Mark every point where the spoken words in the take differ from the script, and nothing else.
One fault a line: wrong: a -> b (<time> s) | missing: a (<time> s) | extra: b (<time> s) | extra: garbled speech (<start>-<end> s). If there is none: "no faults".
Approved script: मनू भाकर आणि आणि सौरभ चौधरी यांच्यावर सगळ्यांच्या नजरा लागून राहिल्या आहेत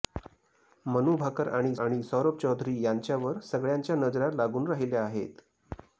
no faults